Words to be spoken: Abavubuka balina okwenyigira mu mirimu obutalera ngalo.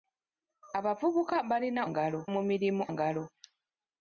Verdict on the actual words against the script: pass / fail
fail